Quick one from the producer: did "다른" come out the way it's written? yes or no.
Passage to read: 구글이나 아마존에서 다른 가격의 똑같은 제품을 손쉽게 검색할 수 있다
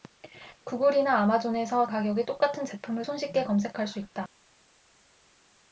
no